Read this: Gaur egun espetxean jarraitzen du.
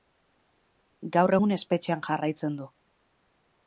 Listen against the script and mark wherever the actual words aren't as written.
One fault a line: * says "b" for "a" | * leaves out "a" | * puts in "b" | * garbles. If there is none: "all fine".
all fine